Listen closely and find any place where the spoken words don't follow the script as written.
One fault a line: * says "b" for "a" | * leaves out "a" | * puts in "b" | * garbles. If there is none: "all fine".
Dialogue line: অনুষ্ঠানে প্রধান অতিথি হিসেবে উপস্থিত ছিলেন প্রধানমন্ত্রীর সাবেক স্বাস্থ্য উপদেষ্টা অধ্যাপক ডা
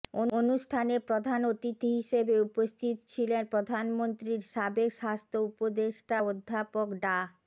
all fine